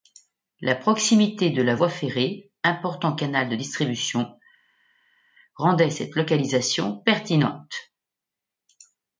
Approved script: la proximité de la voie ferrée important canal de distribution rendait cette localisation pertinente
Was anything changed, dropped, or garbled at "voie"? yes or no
no